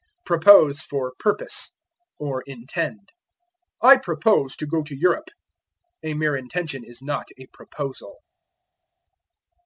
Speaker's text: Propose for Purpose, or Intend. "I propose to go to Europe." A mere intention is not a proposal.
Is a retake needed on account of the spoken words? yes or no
no